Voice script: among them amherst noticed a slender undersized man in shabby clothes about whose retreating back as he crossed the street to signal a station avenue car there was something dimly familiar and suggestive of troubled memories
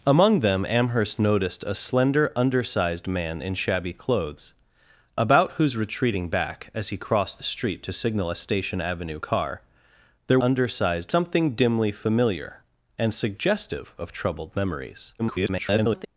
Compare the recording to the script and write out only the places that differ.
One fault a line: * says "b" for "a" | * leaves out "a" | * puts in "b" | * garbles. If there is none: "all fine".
* says "undersized" for "was"
* garbles